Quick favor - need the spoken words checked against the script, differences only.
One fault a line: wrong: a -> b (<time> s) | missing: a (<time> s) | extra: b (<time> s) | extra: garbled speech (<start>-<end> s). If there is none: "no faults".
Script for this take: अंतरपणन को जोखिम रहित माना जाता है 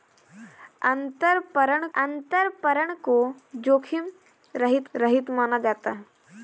extra: अंतरपणन (1.9 s)
extra: रहित (4.9 s)